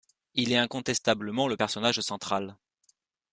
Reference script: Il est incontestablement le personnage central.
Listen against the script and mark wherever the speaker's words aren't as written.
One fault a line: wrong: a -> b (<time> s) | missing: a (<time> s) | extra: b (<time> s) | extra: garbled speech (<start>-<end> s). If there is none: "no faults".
no faults